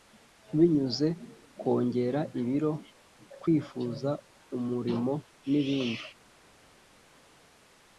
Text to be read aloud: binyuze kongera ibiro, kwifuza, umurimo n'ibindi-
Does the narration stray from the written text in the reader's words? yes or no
no